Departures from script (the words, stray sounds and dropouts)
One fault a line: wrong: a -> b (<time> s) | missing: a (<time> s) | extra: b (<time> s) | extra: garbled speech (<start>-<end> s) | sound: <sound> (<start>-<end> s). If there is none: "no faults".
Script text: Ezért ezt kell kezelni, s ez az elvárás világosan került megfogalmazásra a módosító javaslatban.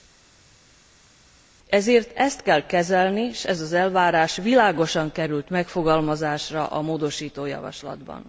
no faults